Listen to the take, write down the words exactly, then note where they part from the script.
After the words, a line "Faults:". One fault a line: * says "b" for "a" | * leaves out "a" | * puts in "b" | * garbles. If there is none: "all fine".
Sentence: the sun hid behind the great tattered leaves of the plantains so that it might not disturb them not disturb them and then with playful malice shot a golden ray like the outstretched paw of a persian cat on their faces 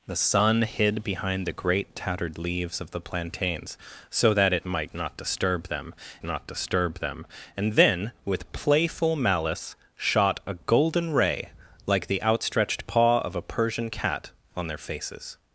the sun hid behind the great tattered leaves of the plantains so that it might not disturb them not disturb them and then with playful malice shot a golden ray like the outstretched paw of a persian cat on their faces
Faults:
all fine